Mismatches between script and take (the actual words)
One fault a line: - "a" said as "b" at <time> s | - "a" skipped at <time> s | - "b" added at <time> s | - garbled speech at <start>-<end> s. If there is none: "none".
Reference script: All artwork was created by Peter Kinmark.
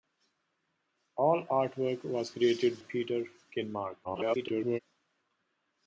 - "by" skipped at 2.8 s
- garbled speech at 4.0-4.8 s